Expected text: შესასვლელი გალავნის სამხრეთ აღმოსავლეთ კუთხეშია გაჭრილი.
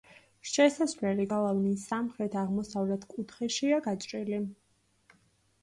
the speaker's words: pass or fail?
pass